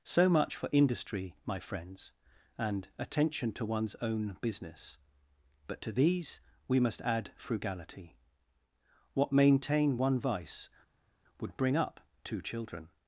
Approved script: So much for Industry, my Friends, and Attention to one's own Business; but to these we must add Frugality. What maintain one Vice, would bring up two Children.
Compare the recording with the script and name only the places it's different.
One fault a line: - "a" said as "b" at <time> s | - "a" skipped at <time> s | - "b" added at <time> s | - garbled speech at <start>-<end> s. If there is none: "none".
none